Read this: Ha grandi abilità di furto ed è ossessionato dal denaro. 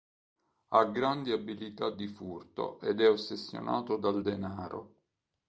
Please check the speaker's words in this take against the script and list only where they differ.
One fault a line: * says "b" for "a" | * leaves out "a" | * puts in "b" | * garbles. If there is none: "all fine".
all fine